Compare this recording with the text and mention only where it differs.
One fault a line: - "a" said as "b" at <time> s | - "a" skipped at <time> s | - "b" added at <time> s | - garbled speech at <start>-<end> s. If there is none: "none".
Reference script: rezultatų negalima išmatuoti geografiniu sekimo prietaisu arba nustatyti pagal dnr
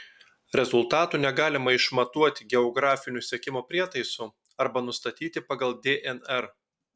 none